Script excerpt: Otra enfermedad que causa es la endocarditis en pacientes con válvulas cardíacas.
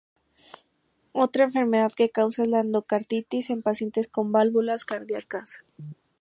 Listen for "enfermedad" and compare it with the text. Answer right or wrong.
right